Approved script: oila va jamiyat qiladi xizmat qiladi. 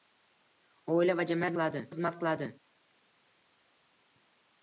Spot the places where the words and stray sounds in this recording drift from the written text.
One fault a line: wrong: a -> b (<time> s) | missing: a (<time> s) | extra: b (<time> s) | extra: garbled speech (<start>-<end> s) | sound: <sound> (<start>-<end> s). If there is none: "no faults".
no faults